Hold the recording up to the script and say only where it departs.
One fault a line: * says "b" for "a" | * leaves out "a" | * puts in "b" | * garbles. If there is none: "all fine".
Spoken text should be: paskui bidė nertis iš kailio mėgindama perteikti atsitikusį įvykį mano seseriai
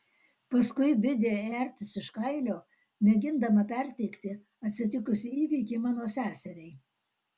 all fine